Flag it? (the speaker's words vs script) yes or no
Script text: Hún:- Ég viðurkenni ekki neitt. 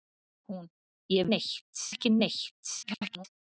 yes